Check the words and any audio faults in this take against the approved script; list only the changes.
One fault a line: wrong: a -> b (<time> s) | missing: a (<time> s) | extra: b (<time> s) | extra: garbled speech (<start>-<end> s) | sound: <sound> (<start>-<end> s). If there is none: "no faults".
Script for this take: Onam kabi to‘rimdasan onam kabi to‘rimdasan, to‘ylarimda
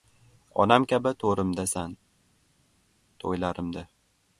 missing: onam kabi to‘rimdasan (1.9 s)